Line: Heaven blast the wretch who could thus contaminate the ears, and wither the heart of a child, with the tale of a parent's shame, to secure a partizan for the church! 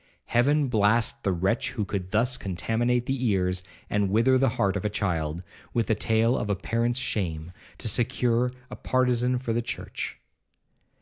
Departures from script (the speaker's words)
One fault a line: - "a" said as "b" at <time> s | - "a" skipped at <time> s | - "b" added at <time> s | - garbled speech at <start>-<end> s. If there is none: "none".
none